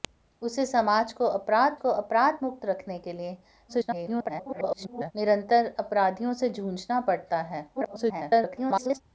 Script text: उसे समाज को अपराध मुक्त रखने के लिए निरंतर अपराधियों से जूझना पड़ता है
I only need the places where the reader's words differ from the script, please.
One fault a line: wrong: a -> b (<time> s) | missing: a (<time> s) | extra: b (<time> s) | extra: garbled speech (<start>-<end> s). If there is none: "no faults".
extra: को अपराध (1.8 s)
extra: garbled speech (3.7-5.1 s)
extra: garbled speech (7.7-9.0 s)